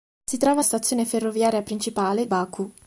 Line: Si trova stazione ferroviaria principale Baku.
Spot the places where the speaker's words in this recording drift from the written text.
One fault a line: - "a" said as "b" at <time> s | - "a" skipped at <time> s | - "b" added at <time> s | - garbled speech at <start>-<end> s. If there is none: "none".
none